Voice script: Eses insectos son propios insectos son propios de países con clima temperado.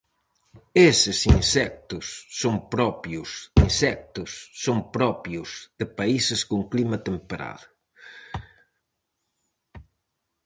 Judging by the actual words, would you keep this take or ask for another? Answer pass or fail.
pass